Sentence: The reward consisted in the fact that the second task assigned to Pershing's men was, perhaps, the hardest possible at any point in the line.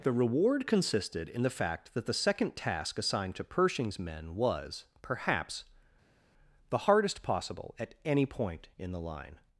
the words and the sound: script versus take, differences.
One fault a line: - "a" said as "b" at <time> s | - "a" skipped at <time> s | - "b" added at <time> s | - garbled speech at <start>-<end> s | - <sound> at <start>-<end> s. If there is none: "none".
none